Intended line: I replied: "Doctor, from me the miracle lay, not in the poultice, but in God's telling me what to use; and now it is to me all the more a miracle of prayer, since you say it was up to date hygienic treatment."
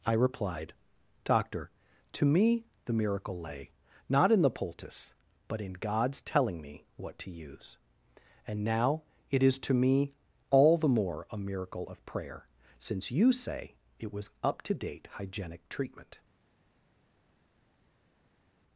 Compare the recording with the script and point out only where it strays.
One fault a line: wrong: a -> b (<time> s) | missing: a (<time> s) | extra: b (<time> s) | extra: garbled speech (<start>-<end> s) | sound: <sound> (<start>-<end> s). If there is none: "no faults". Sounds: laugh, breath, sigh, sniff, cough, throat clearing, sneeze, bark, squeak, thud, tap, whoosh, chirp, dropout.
wrong: from -> to (2.1 s)